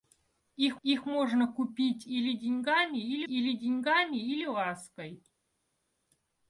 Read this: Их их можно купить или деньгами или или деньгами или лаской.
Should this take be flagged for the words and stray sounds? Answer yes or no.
no